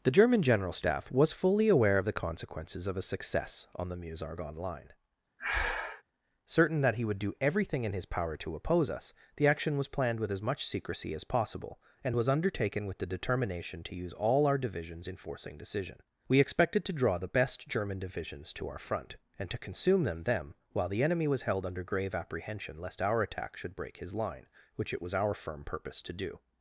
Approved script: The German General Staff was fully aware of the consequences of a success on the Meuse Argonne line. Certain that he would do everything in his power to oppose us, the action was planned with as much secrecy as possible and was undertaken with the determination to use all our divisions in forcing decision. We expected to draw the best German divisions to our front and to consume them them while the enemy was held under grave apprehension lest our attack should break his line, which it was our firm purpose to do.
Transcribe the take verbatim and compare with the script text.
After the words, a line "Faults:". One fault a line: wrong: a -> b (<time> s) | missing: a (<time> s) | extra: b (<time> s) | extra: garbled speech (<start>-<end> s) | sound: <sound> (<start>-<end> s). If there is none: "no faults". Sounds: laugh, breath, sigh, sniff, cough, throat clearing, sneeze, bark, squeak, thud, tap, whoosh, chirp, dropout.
The German General Staff was fully aware of the consequences of a success on the Meuse Argonne line. Certain that he would do everything in his power to oppose us, the action was planned with as much secrecy as possible and was undertaken with the determination to use all our divisions in forcing decision. We expected to draw the best German divisions to our front and to consume them them while the enemy was held under grave apprehension lest our attack should break his line, which it was our firm purpose to do.
Faults:
sound: breath (5.4-6.0 s)